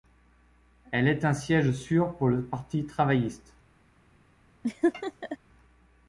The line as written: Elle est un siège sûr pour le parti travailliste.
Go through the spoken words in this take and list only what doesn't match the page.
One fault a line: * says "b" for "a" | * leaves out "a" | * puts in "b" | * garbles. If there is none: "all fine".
all fine